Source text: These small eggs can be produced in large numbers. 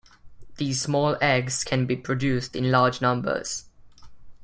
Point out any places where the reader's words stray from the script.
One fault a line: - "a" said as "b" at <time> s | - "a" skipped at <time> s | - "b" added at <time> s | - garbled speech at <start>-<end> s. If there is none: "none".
none